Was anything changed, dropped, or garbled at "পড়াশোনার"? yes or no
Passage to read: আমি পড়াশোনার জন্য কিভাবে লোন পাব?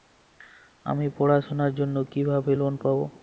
no